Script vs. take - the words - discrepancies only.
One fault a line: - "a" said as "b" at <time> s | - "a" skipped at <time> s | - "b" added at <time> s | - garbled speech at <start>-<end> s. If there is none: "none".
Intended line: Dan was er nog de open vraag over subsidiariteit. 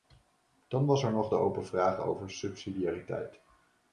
none